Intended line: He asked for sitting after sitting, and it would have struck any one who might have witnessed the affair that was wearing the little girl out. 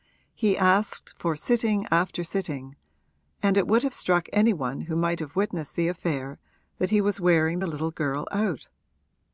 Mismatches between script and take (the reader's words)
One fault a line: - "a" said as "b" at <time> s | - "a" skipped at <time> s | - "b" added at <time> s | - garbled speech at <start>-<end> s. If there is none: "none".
- "he" added at 6.9 s